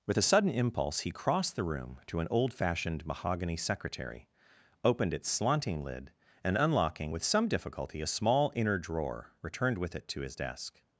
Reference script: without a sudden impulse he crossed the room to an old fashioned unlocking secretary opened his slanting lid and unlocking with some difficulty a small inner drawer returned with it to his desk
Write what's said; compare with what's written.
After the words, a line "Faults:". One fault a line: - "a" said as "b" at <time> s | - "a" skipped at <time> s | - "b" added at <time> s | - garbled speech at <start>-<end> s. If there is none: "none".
with a sudden impulse he crossed the room to an old fashioned mahogany secretary opened its slanting lid and unlocking with some difficulty a small inner drawer returned with it to his desk
Faults:
- "without" said as "with" at 0.1 s
- "unlocking" said as "mahogany" at 3.1 s
- "his" said as "its" at 5.1 s